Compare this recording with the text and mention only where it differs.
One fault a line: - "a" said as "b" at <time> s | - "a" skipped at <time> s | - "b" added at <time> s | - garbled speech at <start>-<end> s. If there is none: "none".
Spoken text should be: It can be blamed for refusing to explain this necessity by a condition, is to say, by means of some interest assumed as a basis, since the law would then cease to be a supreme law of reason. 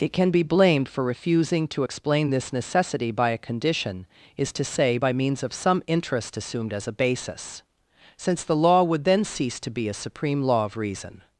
none